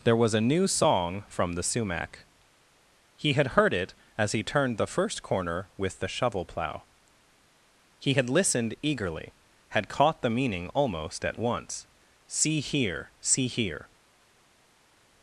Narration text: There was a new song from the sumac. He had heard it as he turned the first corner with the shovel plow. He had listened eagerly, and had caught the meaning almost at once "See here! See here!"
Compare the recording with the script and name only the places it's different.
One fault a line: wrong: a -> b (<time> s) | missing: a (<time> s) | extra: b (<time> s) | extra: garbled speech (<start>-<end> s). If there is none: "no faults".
missing: and (9.3 s)